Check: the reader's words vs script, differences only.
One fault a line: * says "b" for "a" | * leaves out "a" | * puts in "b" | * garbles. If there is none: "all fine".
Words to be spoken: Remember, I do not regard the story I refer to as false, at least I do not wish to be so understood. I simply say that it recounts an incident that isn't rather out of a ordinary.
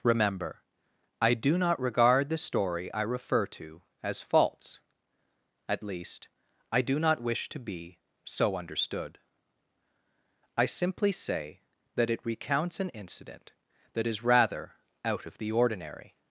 * says "is" for "isn't"
* says "the" for "a"